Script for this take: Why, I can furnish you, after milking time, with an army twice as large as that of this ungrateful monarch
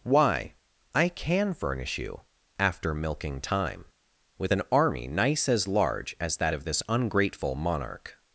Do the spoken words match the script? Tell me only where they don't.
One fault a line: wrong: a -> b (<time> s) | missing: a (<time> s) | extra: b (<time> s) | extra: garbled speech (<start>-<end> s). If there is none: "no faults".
wrong: twice -> nice (5.1 s)